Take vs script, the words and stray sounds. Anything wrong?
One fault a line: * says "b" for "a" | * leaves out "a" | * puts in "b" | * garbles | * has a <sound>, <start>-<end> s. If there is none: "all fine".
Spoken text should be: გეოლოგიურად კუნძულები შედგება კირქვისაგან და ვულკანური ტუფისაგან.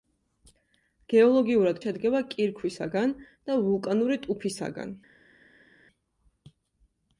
* leaves out "კუნძულები"